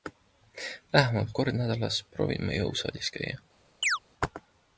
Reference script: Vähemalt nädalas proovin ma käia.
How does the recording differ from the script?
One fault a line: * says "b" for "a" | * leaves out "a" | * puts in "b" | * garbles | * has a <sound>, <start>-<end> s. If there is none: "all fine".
* puts in "kord"
* puts in "jõusaalis"
* has a chirp, 3.8-4.0 s